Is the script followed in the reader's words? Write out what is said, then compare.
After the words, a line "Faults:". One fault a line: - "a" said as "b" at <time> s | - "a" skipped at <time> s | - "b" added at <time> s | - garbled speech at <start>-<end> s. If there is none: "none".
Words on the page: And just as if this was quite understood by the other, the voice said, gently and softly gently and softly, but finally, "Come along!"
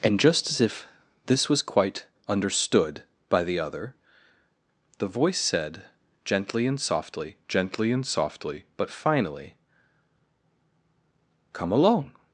And just as if this was quite understood by the other, the voice said, gently and softly gently and softly, but finally, "Come along!"
Faults:
none